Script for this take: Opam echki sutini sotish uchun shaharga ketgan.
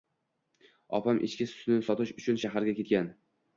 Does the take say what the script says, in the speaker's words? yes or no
yes